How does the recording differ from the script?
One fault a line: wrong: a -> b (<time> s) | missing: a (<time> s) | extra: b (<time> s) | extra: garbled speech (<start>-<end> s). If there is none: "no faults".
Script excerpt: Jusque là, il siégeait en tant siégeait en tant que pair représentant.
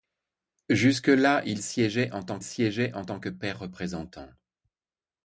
no faults